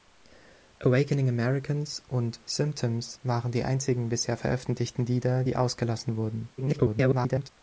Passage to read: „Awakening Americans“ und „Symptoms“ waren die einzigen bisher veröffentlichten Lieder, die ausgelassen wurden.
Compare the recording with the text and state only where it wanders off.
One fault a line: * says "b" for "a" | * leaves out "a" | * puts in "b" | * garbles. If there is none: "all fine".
* garbles